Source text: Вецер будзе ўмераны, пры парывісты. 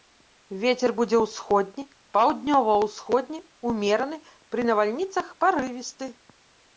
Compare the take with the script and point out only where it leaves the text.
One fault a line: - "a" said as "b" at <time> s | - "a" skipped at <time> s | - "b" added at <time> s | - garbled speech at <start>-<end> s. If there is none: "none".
- "ўсходні паўднёва ўсходні" added at 1.2 s
- "навальніцах" added at 4.7 s